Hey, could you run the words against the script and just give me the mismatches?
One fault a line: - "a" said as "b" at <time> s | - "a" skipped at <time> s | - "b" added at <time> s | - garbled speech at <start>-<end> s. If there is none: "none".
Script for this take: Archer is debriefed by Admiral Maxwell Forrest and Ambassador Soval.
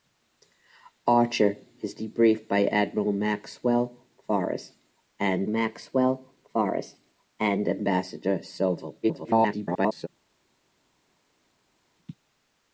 - "Maxwell Forrest and" added at 5.4 s
- garbled speech at 9.0-10.1 s